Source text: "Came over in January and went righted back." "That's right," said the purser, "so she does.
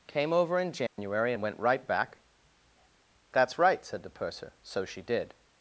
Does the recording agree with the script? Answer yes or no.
no